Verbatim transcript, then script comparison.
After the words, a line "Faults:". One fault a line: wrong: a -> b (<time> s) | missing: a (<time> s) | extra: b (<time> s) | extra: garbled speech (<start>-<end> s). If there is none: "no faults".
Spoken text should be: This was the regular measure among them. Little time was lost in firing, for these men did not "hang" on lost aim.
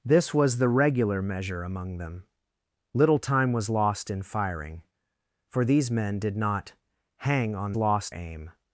This was the regular measure among them. Little time was lost in firing, for these men did not "hang" on lost aim.
Faults:
no faults